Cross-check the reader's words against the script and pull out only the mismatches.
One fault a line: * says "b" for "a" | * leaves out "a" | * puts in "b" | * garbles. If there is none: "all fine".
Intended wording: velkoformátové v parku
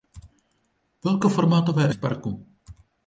all fine